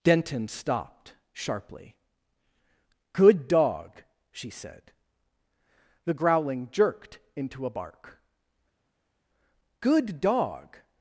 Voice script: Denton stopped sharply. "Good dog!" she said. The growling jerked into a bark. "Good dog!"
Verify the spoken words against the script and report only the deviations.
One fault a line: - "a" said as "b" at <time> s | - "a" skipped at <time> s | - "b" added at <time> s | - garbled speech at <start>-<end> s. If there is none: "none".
none